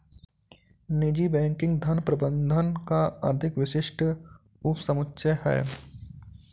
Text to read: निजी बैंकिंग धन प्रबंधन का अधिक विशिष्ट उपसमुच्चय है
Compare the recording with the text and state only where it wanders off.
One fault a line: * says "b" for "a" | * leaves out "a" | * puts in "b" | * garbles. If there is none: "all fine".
all fine